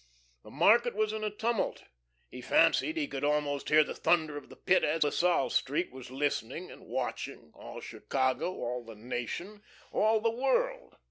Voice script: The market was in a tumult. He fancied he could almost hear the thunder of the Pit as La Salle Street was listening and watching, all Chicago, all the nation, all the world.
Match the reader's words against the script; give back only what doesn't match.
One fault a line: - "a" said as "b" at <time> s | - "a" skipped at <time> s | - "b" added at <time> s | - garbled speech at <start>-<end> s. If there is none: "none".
none